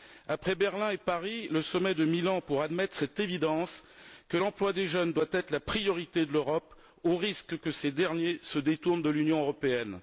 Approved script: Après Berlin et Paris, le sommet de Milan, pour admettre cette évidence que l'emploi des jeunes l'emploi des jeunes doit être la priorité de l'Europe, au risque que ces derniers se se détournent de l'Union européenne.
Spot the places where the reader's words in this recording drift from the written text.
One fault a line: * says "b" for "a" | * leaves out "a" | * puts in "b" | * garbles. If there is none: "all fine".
* leaves out "l'emploi des jeunes"
* leaves out "se"